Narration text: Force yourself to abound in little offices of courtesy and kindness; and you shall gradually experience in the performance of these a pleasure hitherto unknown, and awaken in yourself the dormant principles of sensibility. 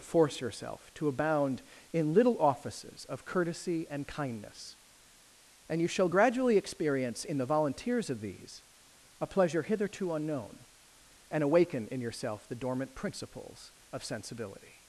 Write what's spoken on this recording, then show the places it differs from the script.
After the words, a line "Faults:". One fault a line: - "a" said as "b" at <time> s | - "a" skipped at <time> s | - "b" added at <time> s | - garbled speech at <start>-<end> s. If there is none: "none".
Force yourself to abound in little offices of courtesy and kindness; and you shall gradually experience in the volunteers of these a pleasure hitherto unknown, and awaken in yourself the dormant principles of sensibility.
Faults:
- "performance" said as "volunteers" at 7.5 s